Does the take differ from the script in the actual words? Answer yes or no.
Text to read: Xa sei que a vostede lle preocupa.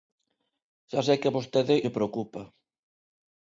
no